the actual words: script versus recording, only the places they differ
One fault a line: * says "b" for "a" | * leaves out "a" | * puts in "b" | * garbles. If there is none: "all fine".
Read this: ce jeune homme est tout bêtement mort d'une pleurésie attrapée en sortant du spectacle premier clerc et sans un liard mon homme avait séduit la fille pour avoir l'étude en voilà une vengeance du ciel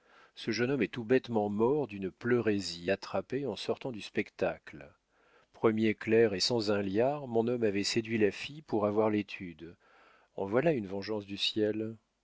all fine